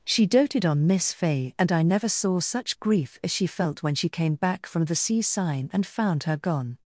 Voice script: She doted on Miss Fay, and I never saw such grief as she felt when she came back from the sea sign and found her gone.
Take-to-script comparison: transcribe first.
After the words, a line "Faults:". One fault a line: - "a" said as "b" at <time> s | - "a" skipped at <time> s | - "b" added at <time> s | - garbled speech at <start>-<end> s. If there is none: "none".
She doted on Miss Fay, and I never saw such grief as she felt when she came back from the sea sign and found her gone.
Faults:
none